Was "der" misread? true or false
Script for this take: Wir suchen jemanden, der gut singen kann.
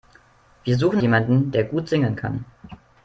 false